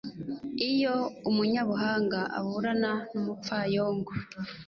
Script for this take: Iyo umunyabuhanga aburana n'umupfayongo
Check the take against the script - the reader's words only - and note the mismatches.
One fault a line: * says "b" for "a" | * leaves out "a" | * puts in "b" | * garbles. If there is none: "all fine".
all fine